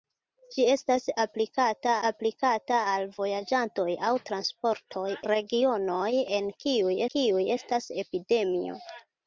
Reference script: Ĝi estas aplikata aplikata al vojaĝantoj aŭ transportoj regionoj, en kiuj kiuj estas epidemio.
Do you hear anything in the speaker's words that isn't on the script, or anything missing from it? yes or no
no